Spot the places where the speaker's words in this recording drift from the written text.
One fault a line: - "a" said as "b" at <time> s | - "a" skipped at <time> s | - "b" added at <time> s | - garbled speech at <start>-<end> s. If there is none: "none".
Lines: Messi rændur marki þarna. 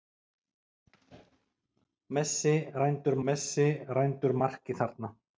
- "messi rændur" added at 3.3 s